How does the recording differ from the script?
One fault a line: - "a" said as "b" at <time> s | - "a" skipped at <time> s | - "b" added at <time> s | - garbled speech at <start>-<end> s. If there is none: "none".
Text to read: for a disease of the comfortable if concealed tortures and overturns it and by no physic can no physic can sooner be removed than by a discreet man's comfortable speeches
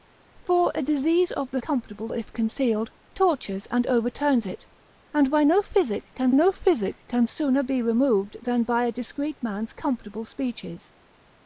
none